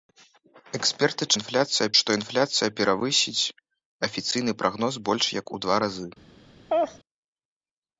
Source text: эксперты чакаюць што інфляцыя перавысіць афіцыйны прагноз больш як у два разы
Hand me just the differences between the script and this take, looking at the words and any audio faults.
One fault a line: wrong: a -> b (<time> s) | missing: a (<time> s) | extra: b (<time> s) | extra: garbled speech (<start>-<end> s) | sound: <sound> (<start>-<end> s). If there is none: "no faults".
wrong: чакаюць -> інфляцыя (1.4 s)
sound: laugh (6.7-7.0 s)